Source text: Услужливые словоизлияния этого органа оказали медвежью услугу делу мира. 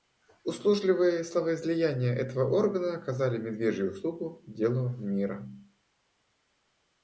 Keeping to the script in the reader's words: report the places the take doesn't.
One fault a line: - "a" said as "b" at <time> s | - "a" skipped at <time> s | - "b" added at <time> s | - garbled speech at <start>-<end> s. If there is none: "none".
none